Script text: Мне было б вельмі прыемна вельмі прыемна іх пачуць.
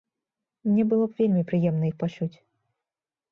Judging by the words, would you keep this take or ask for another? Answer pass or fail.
fail